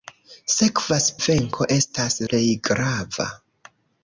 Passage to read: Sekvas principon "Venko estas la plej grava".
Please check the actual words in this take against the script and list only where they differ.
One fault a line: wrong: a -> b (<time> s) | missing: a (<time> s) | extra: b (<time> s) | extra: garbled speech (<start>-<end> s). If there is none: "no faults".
missing: principon (1.1 s)
missing: la (2.2 s)